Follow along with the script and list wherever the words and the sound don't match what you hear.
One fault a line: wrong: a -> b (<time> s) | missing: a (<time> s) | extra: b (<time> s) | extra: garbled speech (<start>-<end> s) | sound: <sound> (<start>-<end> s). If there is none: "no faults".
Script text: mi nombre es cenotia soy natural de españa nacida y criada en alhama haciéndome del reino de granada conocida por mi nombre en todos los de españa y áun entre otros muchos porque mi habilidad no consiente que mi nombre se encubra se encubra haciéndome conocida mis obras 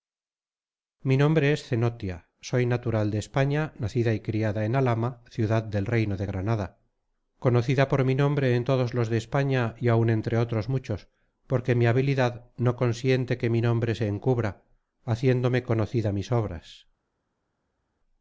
wrong: haciéndome -> ciudad (5.3 s)
missing: se encubra (14.6 s)